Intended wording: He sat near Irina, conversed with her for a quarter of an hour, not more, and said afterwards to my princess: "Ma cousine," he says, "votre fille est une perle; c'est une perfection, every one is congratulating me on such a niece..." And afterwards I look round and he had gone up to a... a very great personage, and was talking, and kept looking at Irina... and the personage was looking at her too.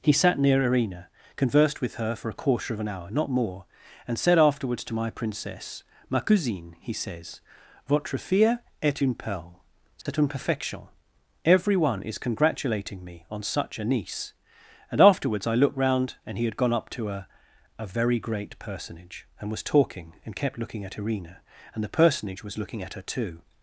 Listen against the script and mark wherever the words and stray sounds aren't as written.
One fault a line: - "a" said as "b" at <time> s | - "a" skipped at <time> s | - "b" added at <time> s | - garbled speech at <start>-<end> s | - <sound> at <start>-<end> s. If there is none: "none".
- dropout at 10.0-10.1 s
- "look" said as "looked" at 15.5 s